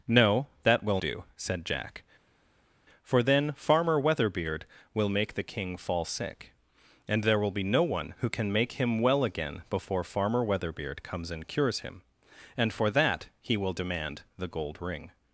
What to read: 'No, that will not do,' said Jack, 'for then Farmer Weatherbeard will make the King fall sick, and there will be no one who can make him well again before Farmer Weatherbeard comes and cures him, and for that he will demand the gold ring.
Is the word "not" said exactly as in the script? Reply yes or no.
no